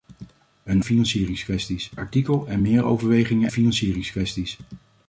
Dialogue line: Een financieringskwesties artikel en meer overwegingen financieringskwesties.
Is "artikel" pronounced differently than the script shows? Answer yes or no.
no